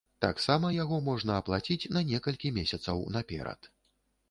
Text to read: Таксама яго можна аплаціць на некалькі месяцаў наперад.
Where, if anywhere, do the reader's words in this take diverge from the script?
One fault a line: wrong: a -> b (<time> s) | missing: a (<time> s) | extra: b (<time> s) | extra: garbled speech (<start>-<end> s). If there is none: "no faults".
no faults